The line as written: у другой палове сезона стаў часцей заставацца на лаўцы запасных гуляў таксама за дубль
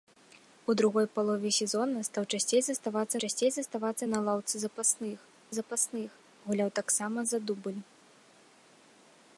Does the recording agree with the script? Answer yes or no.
no